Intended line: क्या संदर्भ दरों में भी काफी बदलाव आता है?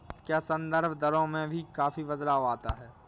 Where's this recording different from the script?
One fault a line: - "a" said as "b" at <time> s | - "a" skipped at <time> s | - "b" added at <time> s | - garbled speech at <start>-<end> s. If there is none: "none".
none